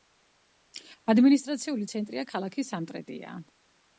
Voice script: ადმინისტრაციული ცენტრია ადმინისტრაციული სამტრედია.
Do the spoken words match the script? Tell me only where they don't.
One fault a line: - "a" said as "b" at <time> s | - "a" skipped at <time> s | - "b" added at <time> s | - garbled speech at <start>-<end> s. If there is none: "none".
- "ადმინისტრაციული" said as "ქალაქი" at 2.3 s